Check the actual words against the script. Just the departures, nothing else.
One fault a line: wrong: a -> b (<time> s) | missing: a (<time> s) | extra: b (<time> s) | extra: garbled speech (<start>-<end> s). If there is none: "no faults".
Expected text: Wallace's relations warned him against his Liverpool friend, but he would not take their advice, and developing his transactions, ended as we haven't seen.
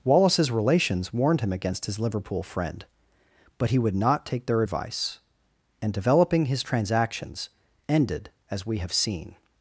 wrong: haven't -> have (8.8 s)